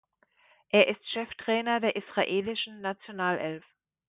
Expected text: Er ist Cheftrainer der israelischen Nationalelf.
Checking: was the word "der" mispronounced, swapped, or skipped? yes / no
no